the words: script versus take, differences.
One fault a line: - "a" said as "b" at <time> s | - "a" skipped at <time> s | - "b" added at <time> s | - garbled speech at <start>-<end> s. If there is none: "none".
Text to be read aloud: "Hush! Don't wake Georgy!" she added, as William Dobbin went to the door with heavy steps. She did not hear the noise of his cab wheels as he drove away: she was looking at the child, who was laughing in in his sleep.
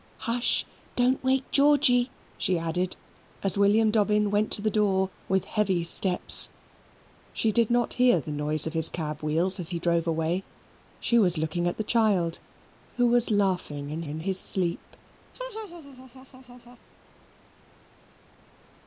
none